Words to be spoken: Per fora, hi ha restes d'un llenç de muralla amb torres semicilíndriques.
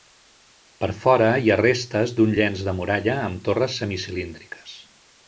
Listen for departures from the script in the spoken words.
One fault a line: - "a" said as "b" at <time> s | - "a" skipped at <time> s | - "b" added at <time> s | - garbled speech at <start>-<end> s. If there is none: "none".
none